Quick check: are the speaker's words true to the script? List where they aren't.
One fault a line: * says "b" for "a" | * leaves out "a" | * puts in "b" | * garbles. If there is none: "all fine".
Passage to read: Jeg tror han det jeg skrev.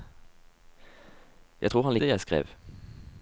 all fine